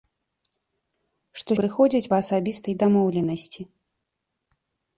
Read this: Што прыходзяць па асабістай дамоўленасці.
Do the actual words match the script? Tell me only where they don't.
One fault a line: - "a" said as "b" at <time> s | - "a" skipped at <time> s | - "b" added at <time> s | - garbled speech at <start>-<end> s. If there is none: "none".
none